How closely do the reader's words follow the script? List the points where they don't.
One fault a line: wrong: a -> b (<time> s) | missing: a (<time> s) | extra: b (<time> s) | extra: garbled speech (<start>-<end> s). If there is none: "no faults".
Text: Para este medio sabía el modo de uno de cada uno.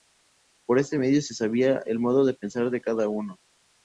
wrong: Para -> Por (0.7 s)
extra: se (1.2 s)
wrong: uno -> pensar (2.3 s)